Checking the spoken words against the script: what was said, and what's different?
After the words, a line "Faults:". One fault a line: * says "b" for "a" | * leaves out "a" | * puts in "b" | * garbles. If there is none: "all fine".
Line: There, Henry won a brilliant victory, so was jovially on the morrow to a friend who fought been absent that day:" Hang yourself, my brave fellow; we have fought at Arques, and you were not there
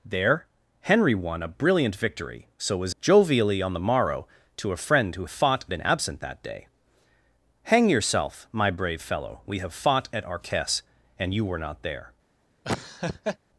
There, Henry won a brilliant victory, so was jovially on the morrow to a friend who fought been absent that day:" Hang yourself, my brave fellow; we have fought at Arques, and you were not there
Faults:
all fine